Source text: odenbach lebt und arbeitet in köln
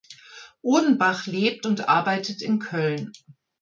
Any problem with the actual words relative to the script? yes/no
no